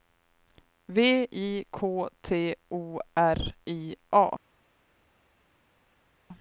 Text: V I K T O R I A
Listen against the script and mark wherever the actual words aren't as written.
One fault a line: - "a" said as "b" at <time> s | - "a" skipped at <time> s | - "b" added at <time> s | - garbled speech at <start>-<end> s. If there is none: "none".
none